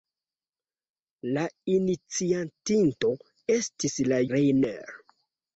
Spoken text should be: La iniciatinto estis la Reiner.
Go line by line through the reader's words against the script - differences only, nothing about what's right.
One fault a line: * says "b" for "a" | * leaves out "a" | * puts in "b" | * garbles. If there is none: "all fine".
all fine